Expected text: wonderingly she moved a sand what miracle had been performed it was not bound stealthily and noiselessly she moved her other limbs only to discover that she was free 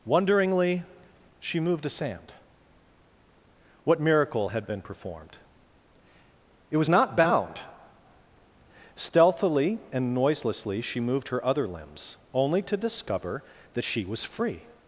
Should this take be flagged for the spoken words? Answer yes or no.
no